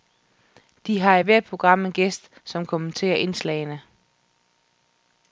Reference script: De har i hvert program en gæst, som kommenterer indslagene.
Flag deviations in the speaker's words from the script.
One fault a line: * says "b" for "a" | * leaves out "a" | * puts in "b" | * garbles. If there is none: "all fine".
all fine